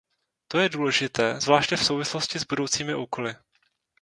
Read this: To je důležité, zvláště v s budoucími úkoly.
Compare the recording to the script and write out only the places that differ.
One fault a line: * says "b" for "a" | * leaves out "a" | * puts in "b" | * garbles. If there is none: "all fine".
* puts in "souvislosti"